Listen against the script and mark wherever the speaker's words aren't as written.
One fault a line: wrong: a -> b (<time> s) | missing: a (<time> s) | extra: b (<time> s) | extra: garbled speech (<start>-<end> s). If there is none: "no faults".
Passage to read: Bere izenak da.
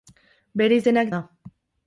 no faults